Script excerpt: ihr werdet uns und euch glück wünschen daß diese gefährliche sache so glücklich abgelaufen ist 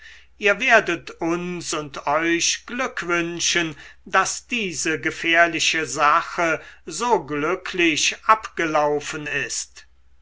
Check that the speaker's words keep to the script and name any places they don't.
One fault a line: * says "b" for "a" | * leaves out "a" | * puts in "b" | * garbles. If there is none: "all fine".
all fine